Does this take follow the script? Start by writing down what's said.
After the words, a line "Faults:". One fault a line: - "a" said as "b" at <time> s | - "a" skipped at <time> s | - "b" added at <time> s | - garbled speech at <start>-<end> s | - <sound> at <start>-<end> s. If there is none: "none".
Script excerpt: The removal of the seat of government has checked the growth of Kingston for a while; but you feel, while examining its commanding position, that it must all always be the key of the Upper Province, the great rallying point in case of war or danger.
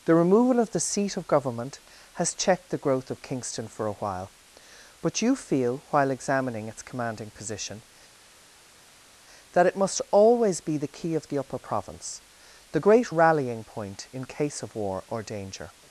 The removal of the seat of government has checked the growth of Kingston for a while; but you feel, while examining its commanding position, that it must always be the key of the Upper Province, the great rallying point in case of war or danger.
Faults:
- "all" skipped at 10.0 s